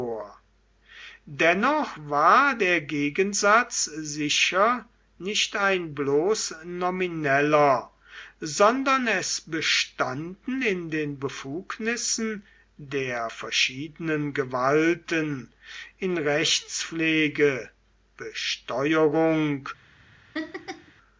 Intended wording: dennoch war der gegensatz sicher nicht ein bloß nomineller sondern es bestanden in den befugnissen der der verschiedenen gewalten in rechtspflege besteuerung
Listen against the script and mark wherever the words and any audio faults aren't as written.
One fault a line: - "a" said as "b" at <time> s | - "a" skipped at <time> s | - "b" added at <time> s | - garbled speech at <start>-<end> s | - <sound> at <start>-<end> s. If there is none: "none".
- "der" skipped at 13.3 s
- laugh at 20.3-20.9 s